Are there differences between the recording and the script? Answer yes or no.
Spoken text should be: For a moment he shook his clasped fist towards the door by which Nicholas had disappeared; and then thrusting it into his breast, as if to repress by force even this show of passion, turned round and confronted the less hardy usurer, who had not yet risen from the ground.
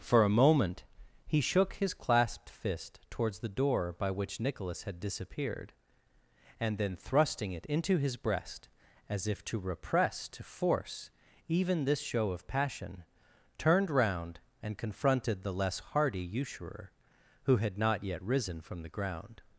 yes